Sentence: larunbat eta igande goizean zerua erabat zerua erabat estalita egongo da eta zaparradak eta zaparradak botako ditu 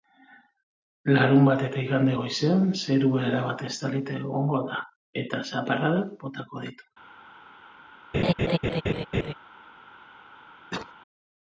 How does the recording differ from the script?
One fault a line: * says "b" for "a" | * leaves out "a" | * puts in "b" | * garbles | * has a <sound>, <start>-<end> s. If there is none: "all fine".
* leaves out "zerua erabat"
* leaves out "eta zaparradak"
* has a laugh, 8.1-9.3 s
* has a cough, 10.7-10.9 s